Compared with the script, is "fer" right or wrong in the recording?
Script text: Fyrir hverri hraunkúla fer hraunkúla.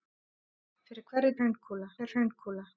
right